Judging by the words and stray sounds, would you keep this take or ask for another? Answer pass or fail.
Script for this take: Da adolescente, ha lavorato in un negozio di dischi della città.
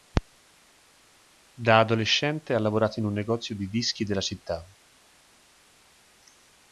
pass